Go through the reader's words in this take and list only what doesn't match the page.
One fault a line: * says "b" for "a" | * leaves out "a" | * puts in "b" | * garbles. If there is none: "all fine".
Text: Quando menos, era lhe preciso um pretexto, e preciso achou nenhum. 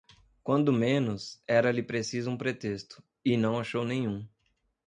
* says "não" for "preciso"